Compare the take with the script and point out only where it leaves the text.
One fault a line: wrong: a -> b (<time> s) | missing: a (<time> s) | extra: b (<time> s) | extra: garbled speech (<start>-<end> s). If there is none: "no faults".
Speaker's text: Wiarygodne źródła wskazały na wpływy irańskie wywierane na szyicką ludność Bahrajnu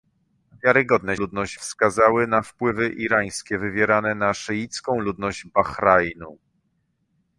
wrong: źródła -> ludność (1.1 s)